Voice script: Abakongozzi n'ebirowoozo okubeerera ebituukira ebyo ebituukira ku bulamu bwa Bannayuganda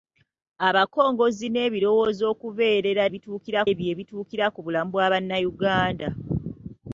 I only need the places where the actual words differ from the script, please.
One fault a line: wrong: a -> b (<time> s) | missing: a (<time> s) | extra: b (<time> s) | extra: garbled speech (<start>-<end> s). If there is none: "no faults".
no faults